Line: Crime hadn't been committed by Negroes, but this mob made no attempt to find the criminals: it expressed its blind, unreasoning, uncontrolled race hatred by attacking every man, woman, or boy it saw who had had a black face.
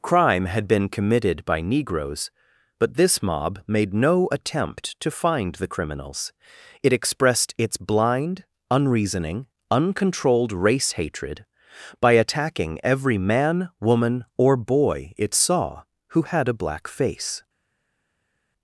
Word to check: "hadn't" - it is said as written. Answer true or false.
false